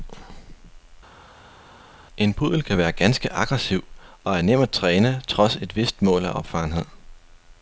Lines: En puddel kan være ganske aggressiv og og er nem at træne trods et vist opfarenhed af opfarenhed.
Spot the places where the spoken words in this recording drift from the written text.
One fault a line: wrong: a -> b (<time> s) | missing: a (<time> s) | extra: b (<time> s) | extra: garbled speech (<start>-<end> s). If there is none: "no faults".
missing: og (4.4 s)
wrong: opfarenhed -> mål (6.0 s)